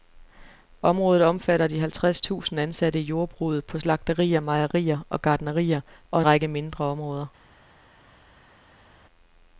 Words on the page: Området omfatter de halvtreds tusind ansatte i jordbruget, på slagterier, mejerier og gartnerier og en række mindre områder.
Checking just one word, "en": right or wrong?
wrong